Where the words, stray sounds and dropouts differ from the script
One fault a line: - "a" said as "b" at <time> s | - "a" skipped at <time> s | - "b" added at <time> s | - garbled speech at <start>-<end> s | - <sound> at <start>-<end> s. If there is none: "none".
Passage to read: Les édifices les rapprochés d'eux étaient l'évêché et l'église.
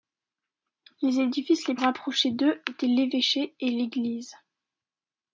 none